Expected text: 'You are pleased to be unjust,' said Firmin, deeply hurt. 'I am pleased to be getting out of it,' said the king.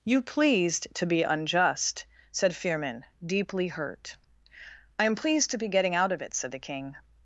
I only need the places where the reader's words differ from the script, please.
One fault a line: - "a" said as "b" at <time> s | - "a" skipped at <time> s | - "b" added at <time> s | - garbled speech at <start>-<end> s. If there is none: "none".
- "are" skipped at 0.2 s